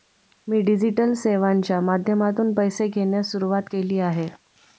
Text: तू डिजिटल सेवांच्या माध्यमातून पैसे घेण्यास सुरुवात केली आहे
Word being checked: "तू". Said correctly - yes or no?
no